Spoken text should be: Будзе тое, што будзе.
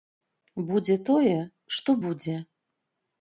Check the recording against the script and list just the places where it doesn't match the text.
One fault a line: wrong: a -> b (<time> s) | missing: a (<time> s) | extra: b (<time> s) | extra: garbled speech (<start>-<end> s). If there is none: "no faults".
no faults